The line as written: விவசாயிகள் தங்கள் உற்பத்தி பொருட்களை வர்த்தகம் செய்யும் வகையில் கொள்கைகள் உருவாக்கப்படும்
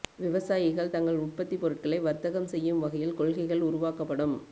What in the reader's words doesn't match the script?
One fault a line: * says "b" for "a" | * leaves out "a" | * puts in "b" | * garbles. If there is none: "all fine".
all fine